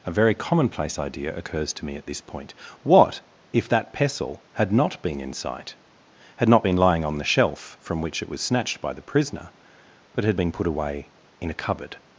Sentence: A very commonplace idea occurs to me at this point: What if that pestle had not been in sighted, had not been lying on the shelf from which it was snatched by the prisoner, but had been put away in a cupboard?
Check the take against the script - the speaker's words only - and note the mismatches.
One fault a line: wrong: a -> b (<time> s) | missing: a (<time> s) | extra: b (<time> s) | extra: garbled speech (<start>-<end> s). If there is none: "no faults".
wrong: sighted -> sight (5.3 s)